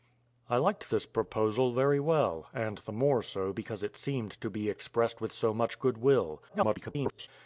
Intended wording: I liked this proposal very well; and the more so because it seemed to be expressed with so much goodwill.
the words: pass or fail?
fail